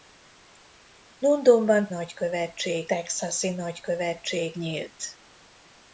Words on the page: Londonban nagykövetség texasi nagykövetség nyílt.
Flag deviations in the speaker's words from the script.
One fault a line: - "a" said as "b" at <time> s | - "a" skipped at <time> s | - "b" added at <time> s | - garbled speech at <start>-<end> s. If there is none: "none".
none